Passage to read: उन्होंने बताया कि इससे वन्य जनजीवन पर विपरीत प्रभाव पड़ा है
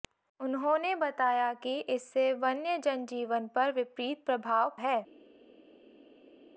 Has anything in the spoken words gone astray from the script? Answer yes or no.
yes